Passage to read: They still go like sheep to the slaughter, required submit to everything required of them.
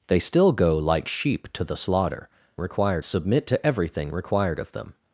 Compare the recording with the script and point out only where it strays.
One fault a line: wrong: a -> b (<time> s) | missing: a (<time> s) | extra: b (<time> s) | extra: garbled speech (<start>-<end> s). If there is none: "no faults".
no faults